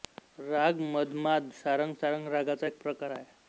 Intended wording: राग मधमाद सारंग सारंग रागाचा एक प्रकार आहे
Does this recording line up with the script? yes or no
yes